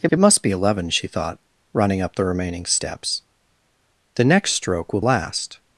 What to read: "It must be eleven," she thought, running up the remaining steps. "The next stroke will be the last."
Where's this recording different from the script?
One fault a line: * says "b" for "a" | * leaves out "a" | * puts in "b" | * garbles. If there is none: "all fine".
* puts in "it"
* leaves out "be the"